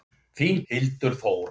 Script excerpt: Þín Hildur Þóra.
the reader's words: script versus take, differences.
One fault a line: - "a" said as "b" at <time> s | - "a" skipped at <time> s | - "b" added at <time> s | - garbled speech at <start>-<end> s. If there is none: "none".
none